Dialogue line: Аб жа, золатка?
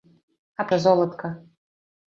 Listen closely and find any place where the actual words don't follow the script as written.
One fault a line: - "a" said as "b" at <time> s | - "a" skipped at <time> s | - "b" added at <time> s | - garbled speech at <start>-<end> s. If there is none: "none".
none